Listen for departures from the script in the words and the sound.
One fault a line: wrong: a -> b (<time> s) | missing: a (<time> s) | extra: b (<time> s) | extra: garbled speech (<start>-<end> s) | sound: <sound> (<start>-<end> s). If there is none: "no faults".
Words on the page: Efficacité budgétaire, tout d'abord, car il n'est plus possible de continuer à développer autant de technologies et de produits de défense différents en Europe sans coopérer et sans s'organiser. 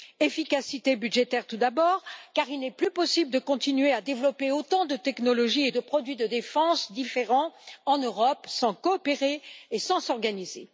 no faults